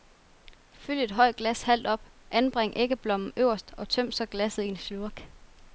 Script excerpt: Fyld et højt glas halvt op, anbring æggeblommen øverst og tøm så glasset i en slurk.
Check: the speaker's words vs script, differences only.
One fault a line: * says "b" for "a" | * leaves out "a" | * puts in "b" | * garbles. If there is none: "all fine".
all fine